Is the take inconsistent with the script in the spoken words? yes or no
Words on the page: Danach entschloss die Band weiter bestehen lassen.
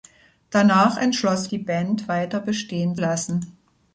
no